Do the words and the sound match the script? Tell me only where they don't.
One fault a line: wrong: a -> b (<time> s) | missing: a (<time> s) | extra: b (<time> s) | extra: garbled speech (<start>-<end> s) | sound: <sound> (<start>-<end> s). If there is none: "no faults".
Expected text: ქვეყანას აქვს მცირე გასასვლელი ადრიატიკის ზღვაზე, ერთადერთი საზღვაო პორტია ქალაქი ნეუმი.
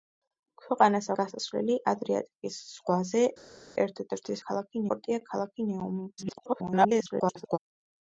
missing: აქვს მცირე (1.1 s)
wrong: საზღვაო -> ქალაქი (4.5 s)
extra: garbled speech (6.2-7.6 s)